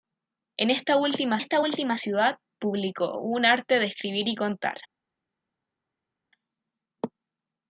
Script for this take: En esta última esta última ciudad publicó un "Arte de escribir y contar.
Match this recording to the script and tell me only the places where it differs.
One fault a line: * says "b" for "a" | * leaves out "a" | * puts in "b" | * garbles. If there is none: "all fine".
all fine